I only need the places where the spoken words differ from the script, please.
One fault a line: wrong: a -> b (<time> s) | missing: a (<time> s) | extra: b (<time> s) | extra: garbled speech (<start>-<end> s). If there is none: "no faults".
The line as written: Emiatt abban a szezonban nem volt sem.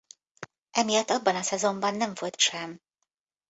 no faults